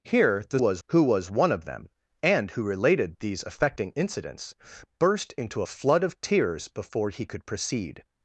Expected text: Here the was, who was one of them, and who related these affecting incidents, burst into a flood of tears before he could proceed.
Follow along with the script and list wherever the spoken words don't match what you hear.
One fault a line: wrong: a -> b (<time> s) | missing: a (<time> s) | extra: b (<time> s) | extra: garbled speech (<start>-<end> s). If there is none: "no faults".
no faults